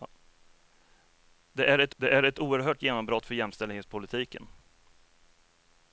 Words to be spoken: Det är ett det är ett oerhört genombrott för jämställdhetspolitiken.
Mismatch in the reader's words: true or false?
false